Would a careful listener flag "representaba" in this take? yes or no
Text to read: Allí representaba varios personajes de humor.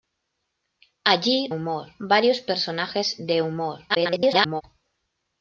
yes